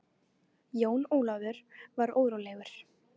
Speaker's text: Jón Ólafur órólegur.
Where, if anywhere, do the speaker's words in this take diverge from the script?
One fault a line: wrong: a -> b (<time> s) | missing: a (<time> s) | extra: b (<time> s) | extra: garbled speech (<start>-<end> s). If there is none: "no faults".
extra: var (1.9 s)